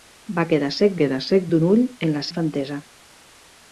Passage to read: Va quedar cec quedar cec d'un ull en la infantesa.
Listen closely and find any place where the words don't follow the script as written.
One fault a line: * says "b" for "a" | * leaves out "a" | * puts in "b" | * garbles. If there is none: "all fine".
all fine